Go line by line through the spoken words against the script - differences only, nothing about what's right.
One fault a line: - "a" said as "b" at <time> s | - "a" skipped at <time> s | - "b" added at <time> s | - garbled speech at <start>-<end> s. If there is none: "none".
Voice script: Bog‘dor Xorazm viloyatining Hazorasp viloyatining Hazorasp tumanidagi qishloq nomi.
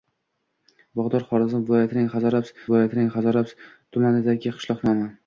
none